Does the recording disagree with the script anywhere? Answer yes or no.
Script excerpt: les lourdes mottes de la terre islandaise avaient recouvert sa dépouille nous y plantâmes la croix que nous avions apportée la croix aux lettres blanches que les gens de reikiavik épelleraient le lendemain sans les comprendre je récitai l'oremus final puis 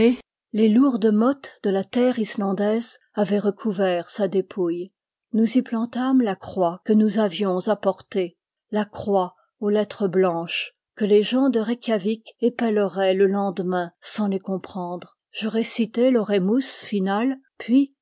no